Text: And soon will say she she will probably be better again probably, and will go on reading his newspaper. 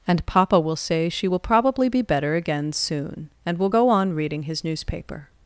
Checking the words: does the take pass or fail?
fail